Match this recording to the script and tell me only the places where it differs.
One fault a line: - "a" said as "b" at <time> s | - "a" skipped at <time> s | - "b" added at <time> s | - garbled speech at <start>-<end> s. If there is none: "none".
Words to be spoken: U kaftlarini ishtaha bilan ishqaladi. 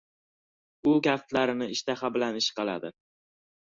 none